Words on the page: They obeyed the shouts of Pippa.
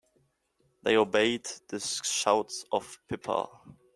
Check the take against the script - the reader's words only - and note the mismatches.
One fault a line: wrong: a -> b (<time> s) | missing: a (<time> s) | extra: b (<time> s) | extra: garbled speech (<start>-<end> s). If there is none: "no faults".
no faults